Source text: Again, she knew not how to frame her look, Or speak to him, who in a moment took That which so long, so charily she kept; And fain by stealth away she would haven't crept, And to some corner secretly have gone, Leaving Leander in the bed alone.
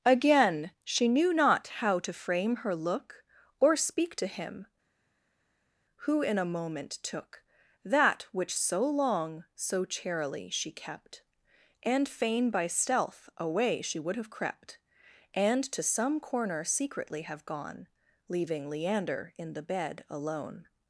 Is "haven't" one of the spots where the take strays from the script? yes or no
yes